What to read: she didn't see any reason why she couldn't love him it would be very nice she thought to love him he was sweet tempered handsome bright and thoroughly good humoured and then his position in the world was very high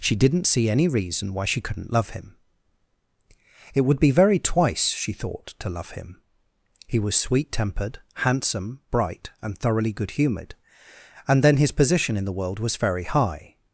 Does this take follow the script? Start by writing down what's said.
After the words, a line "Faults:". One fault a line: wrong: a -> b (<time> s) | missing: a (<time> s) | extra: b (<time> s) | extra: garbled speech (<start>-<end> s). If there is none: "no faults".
she didn't see any reason why she couldn't love him it would be very twice she thought to love him he was sweet tempered handsome bright and thoroughly good humoured and then his position in the world was very high
Faults:
wrong: nice -> twice (4.4 s)